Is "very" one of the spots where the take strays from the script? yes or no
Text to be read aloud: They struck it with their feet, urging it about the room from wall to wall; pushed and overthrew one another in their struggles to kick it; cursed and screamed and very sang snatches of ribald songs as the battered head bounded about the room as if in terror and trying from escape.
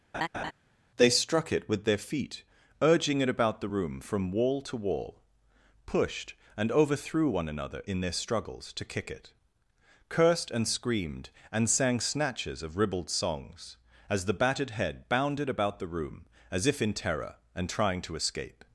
yes